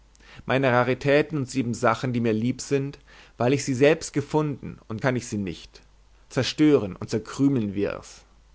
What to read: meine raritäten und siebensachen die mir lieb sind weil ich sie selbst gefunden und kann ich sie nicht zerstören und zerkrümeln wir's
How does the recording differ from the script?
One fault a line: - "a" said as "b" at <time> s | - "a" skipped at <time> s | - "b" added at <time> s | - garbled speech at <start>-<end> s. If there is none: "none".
none